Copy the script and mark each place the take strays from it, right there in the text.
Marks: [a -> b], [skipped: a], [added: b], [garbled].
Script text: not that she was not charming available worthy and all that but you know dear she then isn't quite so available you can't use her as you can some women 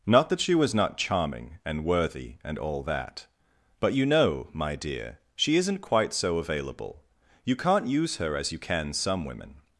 not that she was not charming [available -> and] worthy and all that but you know [added: my] dear she [skipped: then] isn't quite so available you can't use her as you can some women